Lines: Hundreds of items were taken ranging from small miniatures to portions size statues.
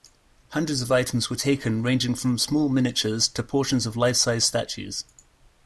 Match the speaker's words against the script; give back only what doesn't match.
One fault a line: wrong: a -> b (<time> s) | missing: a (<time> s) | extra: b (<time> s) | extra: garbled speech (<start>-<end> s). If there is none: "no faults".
extra: of life (3.9 s)